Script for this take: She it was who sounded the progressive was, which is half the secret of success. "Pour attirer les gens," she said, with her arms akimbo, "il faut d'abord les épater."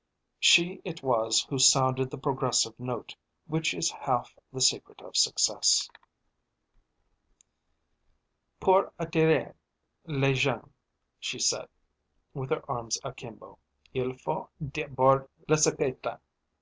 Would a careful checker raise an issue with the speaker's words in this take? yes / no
yes